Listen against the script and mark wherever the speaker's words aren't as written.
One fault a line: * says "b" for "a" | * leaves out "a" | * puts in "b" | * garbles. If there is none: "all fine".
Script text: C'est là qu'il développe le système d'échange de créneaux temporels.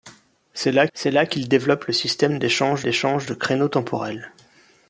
* puts in "c'est là"
* puts in "d'échange"